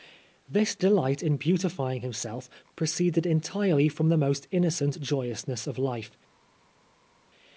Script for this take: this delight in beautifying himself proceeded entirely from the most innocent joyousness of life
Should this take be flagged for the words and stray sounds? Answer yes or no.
no